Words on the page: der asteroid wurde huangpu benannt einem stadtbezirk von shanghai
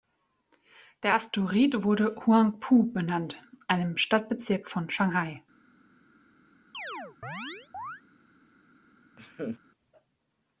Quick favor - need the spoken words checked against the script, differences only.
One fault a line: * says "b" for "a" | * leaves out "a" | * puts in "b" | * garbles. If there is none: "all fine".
all fine